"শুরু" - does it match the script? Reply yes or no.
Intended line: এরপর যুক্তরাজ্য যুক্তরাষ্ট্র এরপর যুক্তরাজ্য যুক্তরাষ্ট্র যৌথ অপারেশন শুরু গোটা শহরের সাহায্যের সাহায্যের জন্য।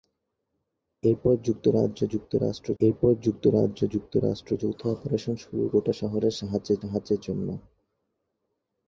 yes